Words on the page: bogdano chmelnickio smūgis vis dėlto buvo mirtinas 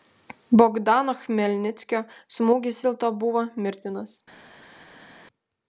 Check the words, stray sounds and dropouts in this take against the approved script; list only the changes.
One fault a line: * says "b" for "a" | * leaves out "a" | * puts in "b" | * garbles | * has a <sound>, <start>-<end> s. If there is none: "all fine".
* leaves out "vis"